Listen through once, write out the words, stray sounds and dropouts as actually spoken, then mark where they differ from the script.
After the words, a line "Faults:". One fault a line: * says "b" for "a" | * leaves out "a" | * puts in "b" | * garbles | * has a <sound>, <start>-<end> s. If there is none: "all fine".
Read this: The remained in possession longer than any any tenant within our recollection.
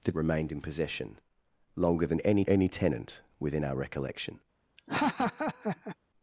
The remained in possession longer than any any tenant within our recollection.
Faults:
* has a laugh, 4.8-6.0 s